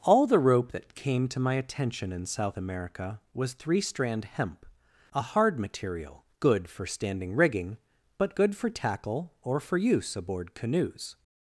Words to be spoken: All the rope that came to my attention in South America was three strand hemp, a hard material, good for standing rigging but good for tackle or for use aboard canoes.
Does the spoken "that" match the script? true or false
true